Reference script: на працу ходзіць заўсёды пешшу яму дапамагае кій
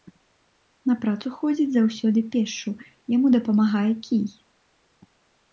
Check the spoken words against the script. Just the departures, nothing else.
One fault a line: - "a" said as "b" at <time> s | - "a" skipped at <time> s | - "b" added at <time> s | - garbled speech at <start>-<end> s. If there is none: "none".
none